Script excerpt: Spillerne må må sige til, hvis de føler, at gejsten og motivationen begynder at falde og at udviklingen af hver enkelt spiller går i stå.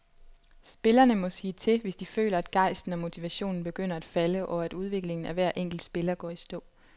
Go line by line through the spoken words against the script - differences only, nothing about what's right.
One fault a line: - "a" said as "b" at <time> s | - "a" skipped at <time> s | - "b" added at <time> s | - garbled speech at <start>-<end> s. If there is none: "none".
- "må" skipped at 1.3 s